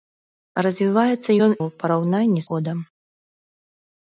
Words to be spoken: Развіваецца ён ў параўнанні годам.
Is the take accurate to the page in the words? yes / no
yes